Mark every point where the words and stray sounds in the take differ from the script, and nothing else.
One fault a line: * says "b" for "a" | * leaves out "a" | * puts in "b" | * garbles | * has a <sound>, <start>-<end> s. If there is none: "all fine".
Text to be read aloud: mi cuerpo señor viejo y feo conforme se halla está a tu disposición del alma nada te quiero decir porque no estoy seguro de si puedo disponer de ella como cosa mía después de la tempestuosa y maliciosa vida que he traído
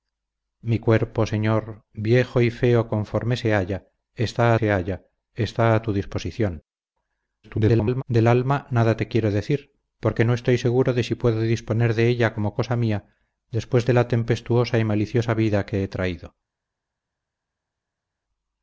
* puts in "se halla está"
* garbles